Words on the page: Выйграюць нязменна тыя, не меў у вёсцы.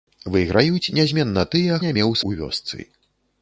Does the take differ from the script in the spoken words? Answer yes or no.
no